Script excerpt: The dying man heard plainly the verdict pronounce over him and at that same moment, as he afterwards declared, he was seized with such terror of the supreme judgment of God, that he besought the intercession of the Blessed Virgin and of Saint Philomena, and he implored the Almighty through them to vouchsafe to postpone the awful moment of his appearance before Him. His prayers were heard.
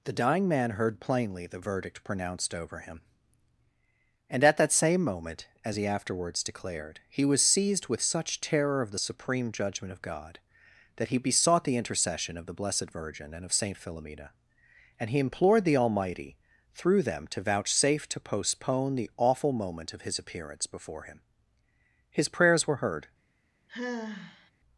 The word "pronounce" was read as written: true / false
false